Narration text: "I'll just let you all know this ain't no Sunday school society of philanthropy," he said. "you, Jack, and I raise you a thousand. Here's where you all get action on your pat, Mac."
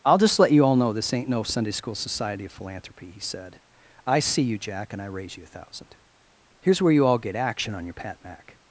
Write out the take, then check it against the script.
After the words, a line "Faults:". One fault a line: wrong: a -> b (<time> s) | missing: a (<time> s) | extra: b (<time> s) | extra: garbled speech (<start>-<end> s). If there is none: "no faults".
"I'll just let you all know this ain't no Sunday school society of philanthropy," he said. "I see you, Jack, and I raise you a thousand. Here's where you all get action on your pat, Mac."
Faults:
extra: I see (4.1 s)